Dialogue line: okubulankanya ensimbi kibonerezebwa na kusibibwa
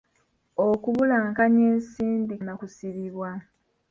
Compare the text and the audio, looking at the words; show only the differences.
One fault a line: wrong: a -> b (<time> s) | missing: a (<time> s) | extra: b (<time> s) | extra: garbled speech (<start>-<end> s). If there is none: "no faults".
missing: kibonerezebwa (2.3 s)